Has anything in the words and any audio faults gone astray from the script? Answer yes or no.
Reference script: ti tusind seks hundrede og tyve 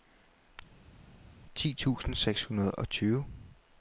no